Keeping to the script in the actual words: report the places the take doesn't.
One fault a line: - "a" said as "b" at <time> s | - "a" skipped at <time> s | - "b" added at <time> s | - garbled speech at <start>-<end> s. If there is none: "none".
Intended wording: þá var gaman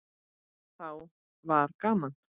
none